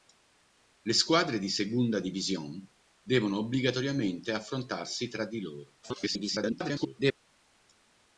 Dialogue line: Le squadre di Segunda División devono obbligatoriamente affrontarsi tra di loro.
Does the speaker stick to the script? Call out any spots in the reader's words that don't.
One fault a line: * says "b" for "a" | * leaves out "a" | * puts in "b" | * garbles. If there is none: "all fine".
* garbles